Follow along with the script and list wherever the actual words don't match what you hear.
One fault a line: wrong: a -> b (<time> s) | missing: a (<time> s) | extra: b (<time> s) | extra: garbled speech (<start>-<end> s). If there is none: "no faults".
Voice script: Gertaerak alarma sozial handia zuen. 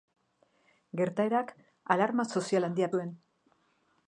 no faults